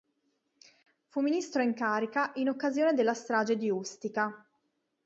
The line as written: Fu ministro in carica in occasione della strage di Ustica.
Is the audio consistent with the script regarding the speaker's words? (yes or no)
yes